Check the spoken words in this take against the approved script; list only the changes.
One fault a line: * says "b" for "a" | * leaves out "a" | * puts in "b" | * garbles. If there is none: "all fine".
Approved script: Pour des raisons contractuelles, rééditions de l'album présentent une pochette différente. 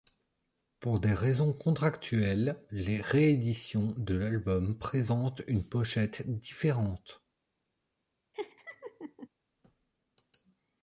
* puts in "les"